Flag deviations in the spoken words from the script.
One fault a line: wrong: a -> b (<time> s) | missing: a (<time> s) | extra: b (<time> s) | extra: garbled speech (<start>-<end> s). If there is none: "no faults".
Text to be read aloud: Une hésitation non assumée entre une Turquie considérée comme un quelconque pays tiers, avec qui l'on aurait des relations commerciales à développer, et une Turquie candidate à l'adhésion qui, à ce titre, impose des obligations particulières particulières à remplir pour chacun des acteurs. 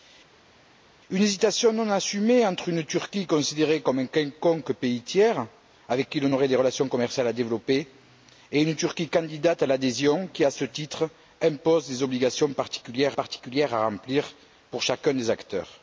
no faults